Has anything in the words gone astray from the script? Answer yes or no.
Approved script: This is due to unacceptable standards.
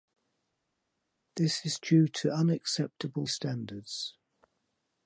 no